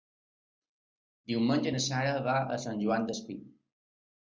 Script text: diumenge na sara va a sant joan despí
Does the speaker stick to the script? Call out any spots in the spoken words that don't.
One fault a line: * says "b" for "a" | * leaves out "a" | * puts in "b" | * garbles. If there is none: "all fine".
all fine